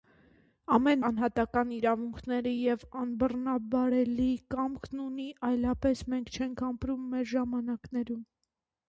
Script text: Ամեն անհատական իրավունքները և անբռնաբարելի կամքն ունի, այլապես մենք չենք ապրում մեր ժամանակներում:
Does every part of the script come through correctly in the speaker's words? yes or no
yes